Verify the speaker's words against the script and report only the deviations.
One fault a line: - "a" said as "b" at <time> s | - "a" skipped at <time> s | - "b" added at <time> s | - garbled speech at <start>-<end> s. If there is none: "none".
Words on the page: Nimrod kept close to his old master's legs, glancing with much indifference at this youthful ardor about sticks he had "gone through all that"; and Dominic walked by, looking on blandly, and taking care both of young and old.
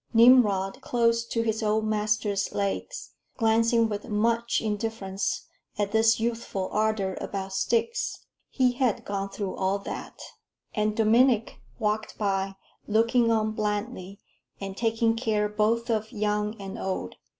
- "kept" skipped at 0.8 s